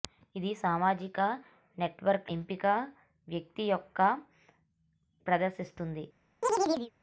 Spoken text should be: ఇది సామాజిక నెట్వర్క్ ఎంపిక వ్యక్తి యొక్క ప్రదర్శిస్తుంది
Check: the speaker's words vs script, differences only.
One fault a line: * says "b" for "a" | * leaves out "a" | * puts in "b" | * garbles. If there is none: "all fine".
all fine